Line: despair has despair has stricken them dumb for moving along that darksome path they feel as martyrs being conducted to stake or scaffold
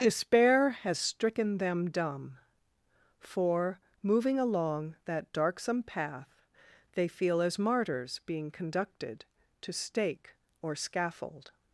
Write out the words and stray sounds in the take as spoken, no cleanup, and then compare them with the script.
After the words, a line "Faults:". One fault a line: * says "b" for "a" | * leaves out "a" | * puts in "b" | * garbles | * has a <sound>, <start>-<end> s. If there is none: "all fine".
despair has stricken them dumb for moving along that darksome path they feel as martyrs being conducted to stake or scaffold
Faults:
* leaves out "despair has"